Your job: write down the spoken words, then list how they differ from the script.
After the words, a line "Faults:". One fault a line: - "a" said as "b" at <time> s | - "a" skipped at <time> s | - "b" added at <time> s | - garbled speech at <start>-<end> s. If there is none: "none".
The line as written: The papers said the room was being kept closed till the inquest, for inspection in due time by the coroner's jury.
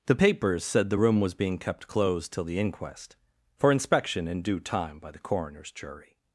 The papers said the room was being kept closed till the inquest, for inspection in due time by the coroner's jury.
Faults:
none